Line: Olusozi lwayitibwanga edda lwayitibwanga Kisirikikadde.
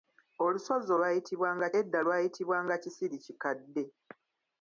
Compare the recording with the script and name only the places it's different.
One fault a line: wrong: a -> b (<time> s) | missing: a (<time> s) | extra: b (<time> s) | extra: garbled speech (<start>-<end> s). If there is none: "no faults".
no faults